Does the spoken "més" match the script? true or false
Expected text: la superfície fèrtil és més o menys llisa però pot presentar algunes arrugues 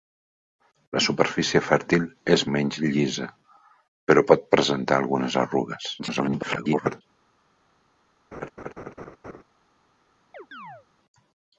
false